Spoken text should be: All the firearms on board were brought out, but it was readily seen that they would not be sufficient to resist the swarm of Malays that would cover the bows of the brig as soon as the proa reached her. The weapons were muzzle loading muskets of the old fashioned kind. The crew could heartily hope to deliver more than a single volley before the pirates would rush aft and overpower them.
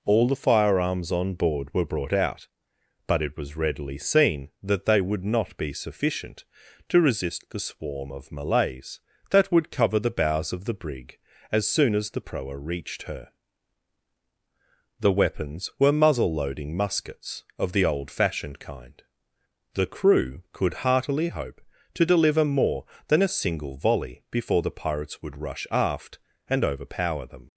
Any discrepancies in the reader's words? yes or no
no